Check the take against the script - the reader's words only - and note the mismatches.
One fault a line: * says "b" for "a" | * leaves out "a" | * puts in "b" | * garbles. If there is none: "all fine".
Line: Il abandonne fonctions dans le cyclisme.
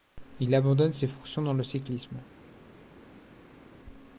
* puts in "ses"